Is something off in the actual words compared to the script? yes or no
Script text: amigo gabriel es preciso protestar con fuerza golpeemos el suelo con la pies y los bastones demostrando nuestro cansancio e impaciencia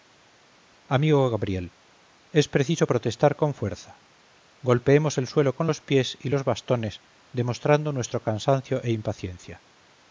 yes